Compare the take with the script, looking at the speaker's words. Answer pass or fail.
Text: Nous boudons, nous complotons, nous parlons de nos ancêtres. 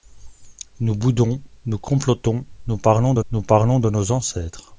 fail